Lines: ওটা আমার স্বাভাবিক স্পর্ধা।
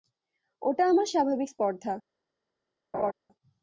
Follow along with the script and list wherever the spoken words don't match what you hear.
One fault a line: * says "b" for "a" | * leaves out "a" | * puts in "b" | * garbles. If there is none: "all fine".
all fine